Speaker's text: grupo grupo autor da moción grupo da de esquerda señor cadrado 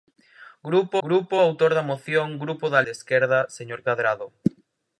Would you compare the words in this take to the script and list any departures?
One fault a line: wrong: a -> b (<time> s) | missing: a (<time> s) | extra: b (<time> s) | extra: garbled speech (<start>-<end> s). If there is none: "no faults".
no faults